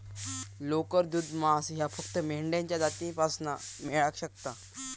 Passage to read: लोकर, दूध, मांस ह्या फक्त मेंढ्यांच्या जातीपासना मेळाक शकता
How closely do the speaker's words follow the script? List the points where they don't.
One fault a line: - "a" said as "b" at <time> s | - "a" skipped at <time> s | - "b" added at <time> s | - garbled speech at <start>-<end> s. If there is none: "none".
none